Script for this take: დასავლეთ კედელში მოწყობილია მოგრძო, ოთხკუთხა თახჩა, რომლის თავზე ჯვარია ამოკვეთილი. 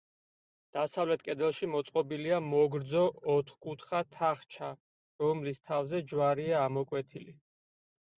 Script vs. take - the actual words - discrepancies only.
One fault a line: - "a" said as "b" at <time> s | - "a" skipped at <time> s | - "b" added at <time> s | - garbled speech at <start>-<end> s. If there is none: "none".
none